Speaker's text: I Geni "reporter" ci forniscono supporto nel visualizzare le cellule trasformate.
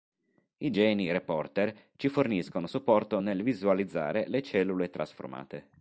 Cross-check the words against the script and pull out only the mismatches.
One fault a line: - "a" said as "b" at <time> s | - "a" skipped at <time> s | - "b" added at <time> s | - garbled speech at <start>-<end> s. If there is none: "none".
none